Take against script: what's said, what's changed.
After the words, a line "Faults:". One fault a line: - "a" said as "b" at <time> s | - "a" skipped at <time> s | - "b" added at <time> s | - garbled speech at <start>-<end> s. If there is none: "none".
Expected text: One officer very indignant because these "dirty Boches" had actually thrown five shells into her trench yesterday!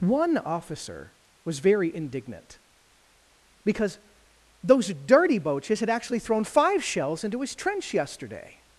One officer was very indignant because those "dirty Boches" had actually thrown five shells into his trench yesterday!
Faults:
- "was" added at 1.4 s
- "these" said as "those" at 4.6 s
- "her" said as "his" at 7.4 s